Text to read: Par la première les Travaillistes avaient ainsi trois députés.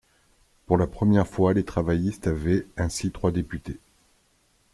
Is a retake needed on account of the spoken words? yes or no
yes